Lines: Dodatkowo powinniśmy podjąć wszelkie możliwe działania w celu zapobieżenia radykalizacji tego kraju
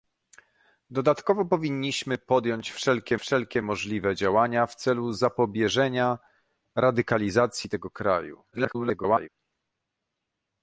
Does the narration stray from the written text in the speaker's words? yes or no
yes